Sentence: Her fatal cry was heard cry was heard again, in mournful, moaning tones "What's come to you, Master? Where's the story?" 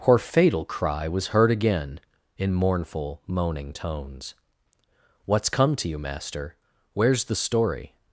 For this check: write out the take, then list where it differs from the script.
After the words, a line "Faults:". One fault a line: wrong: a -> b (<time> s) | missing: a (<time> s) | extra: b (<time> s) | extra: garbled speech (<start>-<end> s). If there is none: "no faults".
Her fatal cry was heard again, in mournful, moaning tones "What's come to you, Master? Where's the story?"
Faults:
missing: cry was heard (1.5 s)